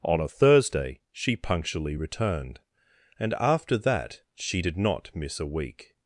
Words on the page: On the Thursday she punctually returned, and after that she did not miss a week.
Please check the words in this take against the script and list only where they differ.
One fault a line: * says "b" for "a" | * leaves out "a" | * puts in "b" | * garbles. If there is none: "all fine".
* says "a" for "the"